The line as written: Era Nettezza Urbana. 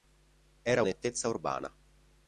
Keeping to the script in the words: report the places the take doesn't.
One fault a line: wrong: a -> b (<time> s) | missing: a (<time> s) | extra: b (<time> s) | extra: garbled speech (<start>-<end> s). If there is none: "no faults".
no faults